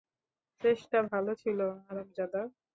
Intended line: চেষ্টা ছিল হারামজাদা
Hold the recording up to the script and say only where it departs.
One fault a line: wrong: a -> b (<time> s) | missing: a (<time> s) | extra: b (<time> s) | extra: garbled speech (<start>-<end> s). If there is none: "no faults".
extra: ভালো (1.1 s)